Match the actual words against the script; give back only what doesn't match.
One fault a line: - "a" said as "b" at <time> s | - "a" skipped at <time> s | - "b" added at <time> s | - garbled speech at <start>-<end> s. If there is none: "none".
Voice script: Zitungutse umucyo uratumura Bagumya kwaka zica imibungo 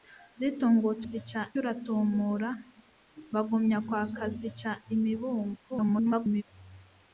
- "umucyo" said as "zica" at 1.1 s
- garbled speech at 5.7-6.4 s